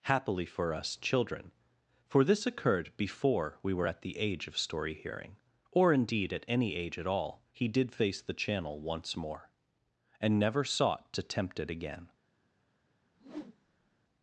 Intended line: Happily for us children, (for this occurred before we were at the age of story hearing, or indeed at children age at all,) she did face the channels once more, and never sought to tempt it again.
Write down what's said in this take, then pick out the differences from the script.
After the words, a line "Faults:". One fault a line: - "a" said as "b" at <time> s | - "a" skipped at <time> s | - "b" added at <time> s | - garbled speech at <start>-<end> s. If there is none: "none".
Happily for us children, (for this occurred before we were at the age of story hearing, or indeed at any age at all,) he did face the channel once more, and never sought to tempt it again.
Faults:
- "children" said as "any" at 6.5 s
- "she" said as "he" at 7.5 s
- "channels" said as "channel" at 8.3 s